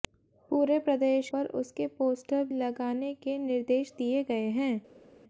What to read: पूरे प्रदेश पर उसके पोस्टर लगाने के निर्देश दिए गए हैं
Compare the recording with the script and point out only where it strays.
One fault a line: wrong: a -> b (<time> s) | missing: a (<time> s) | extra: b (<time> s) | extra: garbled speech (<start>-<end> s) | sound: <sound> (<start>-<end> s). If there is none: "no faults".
no faults